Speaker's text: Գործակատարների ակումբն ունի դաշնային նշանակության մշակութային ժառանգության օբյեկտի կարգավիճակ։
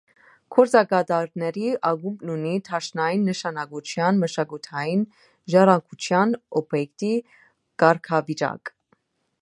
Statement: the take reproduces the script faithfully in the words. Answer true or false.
true